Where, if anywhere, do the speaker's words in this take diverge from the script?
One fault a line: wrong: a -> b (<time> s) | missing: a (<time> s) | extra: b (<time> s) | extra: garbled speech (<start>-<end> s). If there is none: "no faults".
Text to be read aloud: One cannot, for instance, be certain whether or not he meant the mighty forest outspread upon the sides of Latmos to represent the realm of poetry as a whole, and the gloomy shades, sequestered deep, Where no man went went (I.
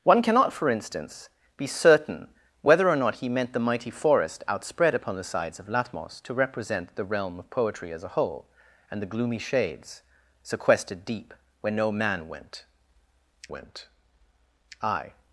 no faults